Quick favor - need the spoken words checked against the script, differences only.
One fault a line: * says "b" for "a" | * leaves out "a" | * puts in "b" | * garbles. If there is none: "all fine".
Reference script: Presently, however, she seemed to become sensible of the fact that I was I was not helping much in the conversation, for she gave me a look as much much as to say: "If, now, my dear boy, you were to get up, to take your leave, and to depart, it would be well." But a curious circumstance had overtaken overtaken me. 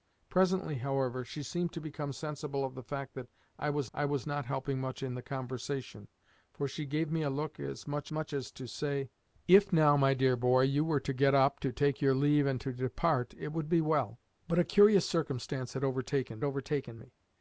all fine